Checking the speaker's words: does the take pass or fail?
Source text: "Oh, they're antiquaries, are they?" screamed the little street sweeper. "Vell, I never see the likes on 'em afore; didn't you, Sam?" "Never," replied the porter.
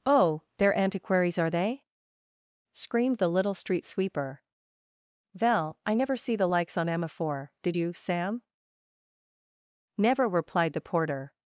fail